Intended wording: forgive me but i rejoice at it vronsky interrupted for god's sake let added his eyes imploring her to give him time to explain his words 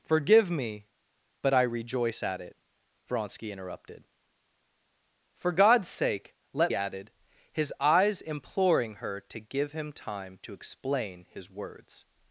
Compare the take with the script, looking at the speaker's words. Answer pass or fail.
pass